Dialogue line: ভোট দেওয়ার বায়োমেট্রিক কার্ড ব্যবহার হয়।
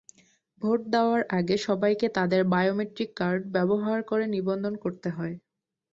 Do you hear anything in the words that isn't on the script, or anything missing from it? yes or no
yes